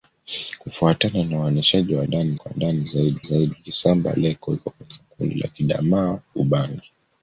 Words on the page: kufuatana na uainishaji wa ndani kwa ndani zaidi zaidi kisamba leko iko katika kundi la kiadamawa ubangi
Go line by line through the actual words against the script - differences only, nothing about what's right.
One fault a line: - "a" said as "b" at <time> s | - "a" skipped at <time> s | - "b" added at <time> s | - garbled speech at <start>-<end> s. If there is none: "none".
none